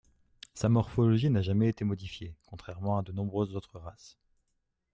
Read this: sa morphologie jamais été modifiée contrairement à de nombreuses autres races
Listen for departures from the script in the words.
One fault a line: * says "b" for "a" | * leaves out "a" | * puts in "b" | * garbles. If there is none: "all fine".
* puts in "n'a"